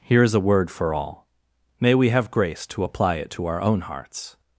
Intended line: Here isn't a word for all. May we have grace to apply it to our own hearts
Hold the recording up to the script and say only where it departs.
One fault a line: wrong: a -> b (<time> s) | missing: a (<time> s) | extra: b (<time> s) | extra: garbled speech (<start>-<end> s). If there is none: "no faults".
wrong: isn't -> is (0.2 s)